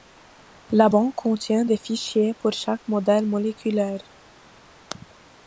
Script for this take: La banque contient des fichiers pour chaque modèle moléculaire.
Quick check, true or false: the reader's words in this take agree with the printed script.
true